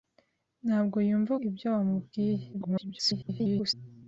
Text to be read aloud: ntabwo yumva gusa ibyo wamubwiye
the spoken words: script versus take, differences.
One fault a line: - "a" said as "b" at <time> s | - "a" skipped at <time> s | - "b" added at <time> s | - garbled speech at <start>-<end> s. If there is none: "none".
- "gusa" skipped at 1.3 s
- garbled speech at 2.5-3.7 s